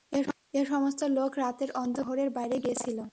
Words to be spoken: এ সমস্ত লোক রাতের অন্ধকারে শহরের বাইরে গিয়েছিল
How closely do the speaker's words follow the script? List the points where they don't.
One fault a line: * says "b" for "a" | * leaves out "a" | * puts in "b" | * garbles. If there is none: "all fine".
all fine